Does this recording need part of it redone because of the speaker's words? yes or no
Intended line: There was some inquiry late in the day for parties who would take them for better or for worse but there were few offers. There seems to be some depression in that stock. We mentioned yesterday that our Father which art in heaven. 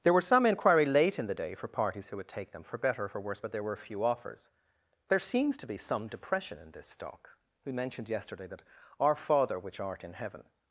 yes